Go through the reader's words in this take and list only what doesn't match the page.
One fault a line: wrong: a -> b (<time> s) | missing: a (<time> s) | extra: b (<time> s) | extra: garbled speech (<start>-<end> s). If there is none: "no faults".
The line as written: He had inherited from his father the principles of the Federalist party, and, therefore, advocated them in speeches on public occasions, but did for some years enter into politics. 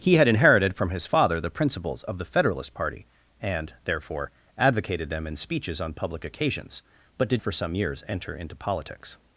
no faults